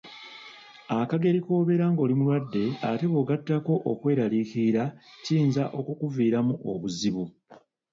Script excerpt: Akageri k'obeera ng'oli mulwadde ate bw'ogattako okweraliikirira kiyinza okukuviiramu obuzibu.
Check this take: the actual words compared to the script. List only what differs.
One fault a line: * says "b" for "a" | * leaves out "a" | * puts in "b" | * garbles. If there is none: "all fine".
all fine